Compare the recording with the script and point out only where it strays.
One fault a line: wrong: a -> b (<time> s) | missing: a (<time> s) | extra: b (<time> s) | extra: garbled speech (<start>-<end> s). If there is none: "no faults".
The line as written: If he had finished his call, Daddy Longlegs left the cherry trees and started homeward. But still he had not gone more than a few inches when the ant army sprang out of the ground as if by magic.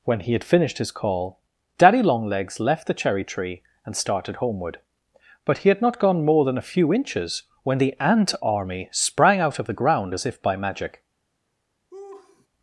wrong: If -> When (0.0 s)
wrong: trees -> tree (3.2 s)
missing: still (5.6 s)